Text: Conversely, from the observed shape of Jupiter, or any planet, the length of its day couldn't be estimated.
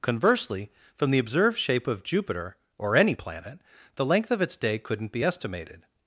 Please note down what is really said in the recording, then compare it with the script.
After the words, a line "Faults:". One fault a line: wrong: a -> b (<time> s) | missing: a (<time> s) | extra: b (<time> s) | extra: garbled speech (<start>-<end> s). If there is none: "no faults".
Conversely, from the observed shape of Jupiter, or any planet, the length of its day couldn't be estimated.
Faults:
no faults